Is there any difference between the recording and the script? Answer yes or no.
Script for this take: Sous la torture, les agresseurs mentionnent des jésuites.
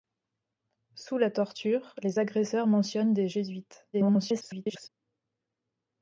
yes